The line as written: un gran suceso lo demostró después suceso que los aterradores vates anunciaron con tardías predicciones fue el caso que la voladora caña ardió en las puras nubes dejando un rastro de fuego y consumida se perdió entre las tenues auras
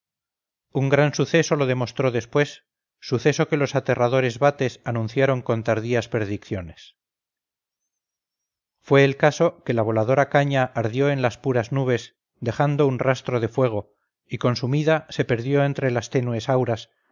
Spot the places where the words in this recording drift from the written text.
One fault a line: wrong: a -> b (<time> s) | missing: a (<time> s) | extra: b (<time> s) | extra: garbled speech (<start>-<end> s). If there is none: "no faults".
no faults